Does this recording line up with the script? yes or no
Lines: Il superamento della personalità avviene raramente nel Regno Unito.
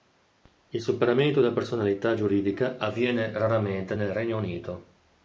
no